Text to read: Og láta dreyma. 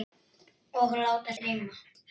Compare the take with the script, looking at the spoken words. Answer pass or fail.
pass